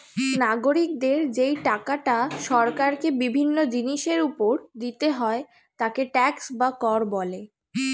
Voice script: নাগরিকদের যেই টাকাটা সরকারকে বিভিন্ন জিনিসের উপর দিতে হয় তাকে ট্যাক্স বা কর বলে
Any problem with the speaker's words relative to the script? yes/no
no